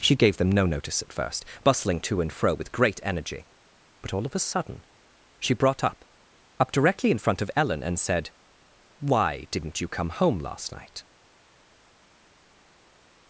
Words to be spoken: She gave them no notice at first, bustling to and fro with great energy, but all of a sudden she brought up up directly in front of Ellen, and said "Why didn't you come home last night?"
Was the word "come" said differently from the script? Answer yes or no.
no